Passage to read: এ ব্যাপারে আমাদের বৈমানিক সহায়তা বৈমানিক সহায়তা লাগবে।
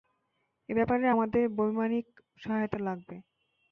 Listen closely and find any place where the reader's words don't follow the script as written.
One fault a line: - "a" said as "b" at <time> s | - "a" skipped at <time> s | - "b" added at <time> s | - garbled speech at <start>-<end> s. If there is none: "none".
- "বৈমানিক সহায়তা" skipped at 2.8 s